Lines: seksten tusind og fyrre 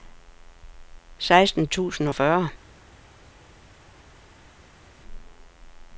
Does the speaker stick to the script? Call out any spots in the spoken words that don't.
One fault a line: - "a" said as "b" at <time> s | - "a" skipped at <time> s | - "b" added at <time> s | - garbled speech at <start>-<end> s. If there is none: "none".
none